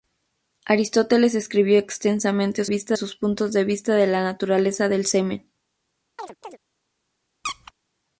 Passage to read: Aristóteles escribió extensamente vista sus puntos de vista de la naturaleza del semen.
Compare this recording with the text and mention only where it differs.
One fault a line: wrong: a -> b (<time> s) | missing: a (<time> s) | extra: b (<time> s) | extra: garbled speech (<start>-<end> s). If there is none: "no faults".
no faults